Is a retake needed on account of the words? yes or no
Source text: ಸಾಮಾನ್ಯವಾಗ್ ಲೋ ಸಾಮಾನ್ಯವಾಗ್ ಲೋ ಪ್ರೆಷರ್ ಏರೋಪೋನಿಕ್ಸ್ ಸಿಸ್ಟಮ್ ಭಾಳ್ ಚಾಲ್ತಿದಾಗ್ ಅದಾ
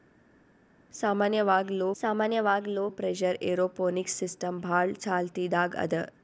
no